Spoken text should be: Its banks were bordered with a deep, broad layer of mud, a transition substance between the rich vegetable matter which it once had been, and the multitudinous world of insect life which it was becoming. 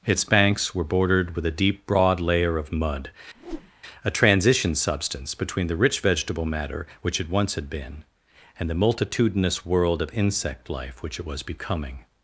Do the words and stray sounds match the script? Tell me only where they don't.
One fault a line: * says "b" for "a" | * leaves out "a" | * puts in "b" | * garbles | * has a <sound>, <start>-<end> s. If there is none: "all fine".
* has a whoosh, 3.3-3.7 s